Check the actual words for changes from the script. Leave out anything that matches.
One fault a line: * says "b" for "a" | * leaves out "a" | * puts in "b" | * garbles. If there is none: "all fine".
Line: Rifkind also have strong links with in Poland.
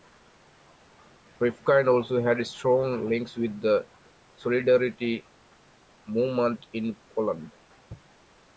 * says "had" for "have"
* puts in "the Solidarity movement"